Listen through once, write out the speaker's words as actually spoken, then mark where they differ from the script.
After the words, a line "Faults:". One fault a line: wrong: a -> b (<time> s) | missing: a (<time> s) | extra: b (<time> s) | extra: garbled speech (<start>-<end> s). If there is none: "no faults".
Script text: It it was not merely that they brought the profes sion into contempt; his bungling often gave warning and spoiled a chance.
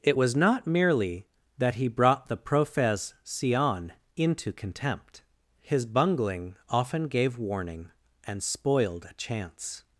It was not merely that he brought the profes sion into contempt; his bungling often gave warning and spoiled a chance.
Faults:
missing: it (0.2 s)
wrong: they -> he (1.8 s)